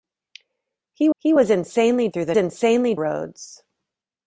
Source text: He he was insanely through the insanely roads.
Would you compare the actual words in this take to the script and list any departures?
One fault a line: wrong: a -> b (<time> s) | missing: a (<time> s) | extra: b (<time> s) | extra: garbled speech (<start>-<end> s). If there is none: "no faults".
no faults